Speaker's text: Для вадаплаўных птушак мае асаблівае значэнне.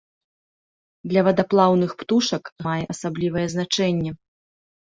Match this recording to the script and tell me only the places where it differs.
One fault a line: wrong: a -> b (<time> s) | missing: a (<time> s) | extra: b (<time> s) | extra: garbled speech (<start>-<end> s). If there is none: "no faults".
no faults